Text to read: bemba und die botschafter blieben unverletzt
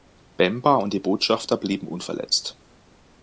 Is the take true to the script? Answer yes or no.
yes